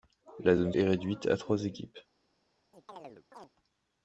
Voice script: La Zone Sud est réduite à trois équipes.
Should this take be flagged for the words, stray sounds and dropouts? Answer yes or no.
yes